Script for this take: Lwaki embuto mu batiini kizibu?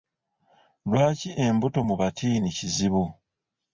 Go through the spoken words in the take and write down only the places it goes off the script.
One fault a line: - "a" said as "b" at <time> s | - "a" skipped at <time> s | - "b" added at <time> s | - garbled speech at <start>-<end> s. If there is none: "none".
none